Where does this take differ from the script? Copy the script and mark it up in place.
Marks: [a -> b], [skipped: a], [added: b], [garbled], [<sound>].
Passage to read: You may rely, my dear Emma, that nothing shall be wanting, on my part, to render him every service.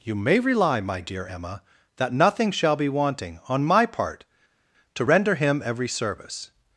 You may rely, my dear Emma, that nothing shall be wanting, on my part, to render him every service.